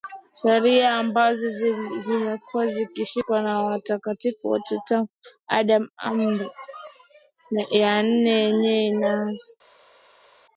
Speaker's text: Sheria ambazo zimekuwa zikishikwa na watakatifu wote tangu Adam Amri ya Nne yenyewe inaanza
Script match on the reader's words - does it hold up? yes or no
yes